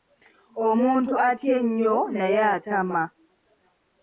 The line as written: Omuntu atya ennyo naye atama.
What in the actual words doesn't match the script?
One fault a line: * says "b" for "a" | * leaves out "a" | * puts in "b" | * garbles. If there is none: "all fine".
all fine